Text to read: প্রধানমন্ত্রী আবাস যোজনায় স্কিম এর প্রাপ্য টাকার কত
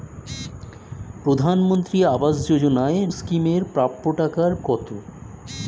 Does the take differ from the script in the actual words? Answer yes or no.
no